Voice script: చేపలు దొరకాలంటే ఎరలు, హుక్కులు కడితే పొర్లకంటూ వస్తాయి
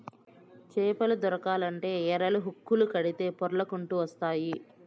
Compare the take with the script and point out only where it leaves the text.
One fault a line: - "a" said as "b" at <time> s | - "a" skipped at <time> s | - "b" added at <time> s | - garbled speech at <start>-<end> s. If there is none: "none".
none